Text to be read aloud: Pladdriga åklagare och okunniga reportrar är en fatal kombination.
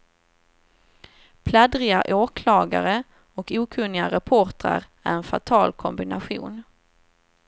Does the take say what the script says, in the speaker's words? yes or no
yes